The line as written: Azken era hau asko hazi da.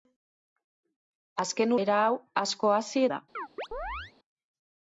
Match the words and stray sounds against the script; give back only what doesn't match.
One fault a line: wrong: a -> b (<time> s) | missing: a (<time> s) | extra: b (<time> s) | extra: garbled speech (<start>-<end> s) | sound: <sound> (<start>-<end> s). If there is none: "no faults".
sound: chirp (3.3-4.1 s)